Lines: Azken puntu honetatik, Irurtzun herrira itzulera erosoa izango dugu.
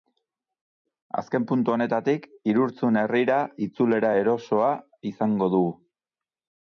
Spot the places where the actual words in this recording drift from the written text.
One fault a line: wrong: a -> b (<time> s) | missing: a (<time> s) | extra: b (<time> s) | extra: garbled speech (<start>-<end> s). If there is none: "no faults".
no faults